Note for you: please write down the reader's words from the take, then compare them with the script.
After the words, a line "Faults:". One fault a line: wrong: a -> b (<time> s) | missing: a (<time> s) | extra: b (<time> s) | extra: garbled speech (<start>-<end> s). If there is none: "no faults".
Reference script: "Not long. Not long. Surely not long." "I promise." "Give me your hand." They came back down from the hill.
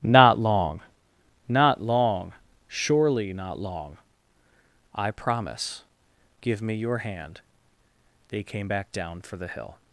"Not long. Not long. Surely not long." "I promise." "Give me your hand." They came back down for the hill.
Faults:
wrong: from -> for (9.2 s)